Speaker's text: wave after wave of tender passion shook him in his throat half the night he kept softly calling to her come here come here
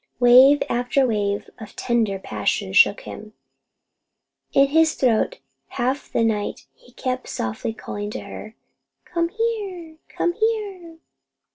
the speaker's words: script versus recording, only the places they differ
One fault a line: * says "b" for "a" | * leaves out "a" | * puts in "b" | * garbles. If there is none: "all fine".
all fine